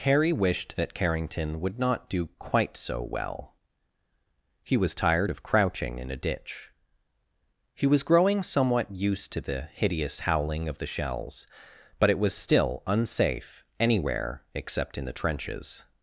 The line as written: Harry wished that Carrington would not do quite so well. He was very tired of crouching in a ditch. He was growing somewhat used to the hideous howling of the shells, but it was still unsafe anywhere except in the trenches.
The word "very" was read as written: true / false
false